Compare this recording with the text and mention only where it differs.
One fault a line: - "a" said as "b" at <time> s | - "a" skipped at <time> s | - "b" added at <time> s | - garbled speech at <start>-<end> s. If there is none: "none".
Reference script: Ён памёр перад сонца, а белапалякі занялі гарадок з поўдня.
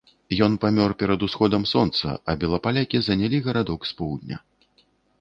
- "усходам" added at 1.3 s